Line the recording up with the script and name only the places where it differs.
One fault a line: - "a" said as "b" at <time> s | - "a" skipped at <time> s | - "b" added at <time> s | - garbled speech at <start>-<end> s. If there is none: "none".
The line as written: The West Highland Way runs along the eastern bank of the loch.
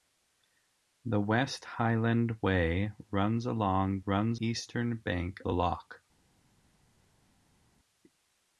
- "the" said as "runs" at 4.1 s
- "of" skipped at 5.4 s